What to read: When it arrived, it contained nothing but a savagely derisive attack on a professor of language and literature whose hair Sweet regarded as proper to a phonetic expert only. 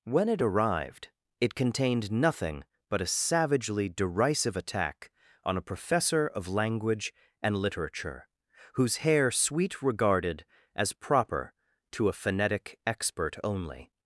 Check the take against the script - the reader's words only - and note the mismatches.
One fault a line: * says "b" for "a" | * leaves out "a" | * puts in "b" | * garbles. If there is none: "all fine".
all fine